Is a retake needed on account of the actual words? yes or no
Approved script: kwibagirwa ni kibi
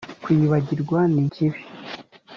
no